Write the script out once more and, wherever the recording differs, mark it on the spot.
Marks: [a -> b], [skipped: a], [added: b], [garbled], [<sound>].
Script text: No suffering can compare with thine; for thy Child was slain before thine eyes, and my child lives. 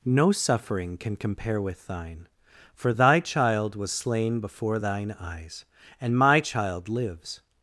No suffering can compare with thine; for thy Child was slain before thine eyes, and my child lives.